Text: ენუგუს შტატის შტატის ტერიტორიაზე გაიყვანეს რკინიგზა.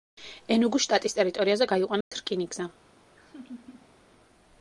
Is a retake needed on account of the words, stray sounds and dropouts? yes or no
yes